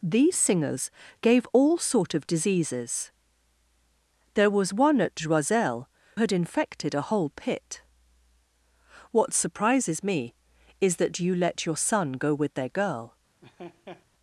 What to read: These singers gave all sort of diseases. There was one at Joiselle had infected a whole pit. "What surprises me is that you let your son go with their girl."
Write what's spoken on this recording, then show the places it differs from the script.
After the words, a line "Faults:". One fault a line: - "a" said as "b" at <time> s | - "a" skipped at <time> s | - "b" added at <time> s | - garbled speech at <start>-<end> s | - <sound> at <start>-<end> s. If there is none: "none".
These singers gave all sort of diseases. There was one at Joiselle had infected a whole pit. "What surprises me is that you let your son go with their girl."
Faults:
- laugh at 13.4-14.1 s